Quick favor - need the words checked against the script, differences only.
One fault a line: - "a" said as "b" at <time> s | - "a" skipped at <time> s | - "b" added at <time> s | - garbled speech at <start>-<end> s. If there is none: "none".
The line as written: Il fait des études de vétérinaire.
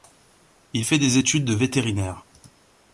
none